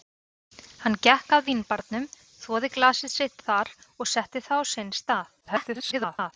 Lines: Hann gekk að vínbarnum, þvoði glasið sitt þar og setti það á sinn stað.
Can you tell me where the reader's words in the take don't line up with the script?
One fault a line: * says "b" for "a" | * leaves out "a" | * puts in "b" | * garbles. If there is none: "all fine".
* garbles